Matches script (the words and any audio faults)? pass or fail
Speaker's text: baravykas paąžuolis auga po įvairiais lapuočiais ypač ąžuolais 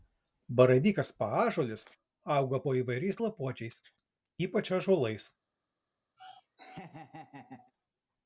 fail